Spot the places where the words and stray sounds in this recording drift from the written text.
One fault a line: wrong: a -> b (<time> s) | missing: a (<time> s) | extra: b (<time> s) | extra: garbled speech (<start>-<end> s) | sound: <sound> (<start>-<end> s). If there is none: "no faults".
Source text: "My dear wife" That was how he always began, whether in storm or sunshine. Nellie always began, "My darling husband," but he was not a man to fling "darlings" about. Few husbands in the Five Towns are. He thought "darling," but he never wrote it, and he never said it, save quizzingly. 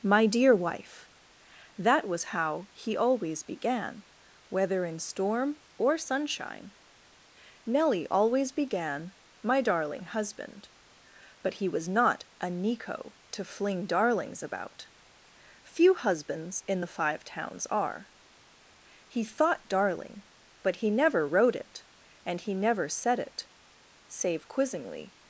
wrong: man -> nico (12.5 s)